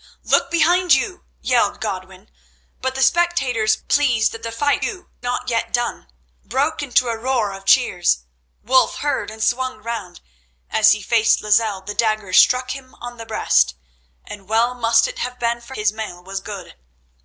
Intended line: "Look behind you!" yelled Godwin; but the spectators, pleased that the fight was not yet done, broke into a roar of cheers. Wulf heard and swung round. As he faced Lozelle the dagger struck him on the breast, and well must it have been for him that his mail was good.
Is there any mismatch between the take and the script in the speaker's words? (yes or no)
yes